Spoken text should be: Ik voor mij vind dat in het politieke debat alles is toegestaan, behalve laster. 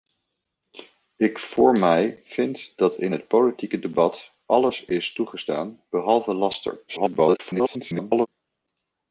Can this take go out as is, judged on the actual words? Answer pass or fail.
fail